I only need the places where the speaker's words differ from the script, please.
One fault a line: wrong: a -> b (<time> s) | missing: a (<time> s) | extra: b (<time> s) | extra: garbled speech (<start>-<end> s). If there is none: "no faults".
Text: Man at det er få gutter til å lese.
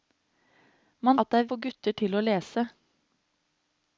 no faults